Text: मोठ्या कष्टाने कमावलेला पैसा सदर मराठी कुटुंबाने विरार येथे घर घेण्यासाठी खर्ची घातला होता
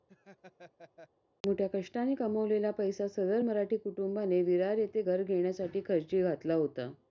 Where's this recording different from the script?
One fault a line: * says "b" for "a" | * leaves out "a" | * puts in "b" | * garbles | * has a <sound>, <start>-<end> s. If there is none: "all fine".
* has a laugh, 0.1-1.1 s